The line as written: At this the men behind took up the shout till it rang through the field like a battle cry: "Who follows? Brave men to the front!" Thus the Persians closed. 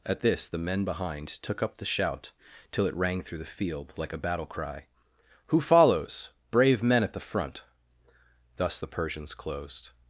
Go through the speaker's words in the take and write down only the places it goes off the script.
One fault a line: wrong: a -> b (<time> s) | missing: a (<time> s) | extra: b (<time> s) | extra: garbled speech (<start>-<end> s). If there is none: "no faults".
wrong: to -> at (7.0 s)